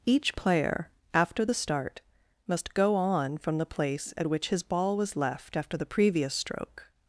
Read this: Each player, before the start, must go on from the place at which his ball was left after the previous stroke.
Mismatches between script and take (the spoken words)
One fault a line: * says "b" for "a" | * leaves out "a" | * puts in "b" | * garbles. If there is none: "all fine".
* says "after" for "before"